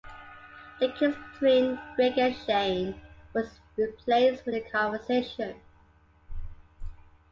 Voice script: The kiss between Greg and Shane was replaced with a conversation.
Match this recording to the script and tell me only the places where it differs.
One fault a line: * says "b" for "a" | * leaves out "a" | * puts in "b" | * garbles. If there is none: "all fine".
all fine